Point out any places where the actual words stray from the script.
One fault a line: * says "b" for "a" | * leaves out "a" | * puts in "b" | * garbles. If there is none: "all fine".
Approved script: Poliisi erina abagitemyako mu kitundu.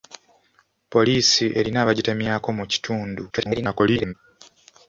* garbles